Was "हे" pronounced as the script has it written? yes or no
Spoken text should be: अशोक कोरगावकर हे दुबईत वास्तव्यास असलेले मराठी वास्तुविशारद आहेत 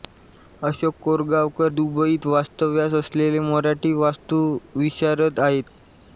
no